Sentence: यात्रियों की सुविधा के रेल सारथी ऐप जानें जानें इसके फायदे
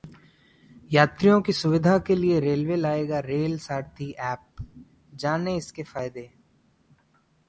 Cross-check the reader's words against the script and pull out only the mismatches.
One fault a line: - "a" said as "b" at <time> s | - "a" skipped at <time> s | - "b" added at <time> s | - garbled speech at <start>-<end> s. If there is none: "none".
- "लिए रेलवे लाएगा" added at 2.1 s
- "जानें" skipped at 5.5 s